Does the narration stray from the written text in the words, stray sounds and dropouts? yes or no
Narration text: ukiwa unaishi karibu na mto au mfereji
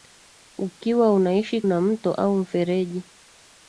yes